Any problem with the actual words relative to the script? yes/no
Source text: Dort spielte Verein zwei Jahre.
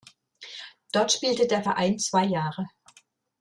yes